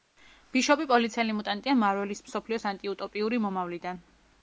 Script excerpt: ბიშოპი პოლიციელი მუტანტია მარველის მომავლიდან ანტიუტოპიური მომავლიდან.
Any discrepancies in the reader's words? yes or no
yes